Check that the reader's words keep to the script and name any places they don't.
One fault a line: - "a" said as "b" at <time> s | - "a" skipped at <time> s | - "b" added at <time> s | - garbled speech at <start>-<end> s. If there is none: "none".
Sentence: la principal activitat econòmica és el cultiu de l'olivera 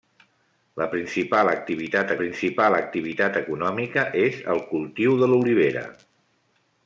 - "principal activitat" added at 2.2 s